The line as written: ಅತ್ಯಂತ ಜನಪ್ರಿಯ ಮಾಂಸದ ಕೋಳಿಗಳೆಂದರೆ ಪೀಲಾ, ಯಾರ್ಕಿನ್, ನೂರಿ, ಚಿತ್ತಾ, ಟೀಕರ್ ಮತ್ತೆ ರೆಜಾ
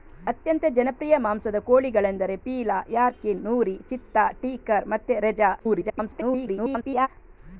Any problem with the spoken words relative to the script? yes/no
yes